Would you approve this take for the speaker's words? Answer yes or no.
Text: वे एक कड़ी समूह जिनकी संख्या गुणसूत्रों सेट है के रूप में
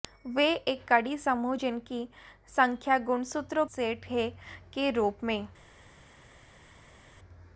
yes